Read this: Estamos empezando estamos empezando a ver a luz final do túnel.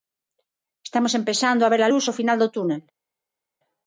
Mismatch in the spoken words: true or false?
true